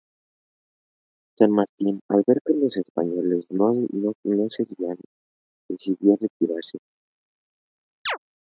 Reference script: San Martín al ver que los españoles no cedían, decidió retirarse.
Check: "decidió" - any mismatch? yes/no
no